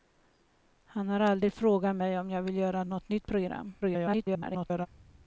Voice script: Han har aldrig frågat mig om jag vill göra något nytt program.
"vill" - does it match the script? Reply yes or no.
yes